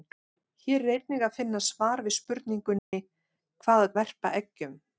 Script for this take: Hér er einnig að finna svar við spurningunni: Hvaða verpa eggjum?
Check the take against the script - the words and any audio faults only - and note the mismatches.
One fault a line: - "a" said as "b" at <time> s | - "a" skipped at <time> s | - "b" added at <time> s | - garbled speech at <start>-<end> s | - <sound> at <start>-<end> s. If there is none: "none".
- dropout at 2.8-2.9 s